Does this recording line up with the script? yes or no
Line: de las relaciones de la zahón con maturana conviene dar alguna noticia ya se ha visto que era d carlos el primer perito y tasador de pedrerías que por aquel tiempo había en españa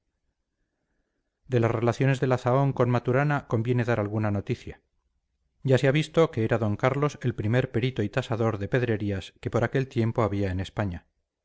yes